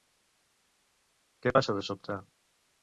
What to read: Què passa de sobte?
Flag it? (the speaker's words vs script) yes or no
no